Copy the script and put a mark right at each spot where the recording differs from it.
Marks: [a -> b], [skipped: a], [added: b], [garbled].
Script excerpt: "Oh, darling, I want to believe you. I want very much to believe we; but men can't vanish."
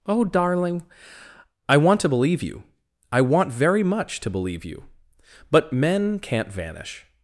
"Oh, darling, I want to believe you. I want very much to believe [we; -> you] but men can't vanish."